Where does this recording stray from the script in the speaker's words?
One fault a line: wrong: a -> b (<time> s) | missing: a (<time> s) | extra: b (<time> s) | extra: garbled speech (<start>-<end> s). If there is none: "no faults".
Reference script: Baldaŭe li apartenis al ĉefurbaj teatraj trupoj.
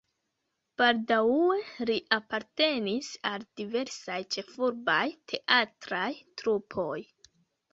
extra: diversaj (3.6 s)